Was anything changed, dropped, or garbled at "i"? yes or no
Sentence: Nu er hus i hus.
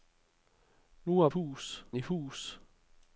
no